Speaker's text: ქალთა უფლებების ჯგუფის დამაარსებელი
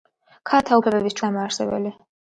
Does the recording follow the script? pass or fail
fail